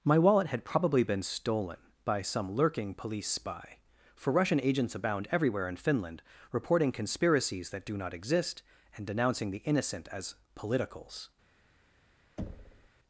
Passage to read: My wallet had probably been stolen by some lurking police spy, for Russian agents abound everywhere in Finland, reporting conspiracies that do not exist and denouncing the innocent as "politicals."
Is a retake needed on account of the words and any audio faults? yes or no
yes